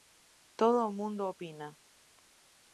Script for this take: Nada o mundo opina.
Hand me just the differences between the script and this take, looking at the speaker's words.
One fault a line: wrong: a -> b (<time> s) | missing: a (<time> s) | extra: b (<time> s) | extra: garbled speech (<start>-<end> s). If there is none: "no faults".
wrong: Nada -> Todo (0.6 s)